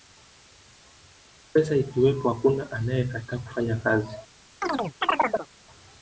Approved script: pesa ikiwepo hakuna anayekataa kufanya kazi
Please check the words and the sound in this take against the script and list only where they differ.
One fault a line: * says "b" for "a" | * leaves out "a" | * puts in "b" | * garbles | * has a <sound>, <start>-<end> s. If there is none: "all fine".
* has a chirp, 4.6-5.5 s